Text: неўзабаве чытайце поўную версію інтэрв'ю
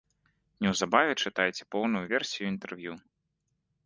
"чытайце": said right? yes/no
yes